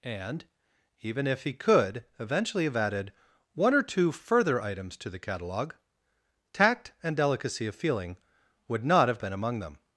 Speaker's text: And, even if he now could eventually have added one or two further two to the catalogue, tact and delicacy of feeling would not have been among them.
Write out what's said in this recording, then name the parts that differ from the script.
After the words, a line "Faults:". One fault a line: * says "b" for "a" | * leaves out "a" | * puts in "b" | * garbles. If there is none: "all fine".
And, even if he could eventually have added one or two further items to the catalogue, tact and delicacy of feeling would not have been among them.
Faults:
* leaves out "now"
* says "items" for "two"